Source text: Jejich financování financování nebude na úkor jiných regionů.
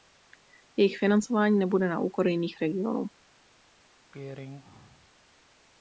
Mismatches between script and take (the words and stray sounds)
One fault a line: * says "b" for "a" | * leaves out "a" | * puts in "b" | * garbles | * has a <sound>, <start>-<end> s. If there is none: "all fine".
* leaves out "financování"
* has a throat clearing, 4.1-5.1 s